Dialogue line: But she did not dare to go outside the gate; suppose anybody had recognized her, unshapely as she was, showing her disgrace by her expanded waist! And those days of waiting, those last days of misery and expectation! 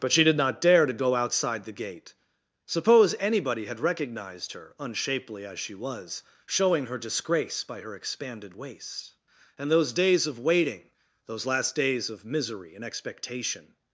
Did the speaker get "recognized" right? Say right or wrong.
right